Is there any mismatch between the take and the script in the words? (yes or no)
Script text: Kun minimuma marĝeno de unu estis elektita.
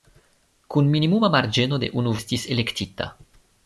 no